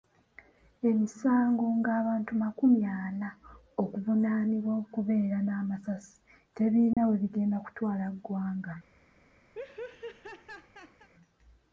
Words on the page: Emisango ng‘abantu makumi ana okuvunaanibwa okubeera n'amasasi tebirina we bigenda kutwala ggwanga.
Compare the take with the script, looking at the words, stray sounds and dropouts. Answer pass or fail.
fail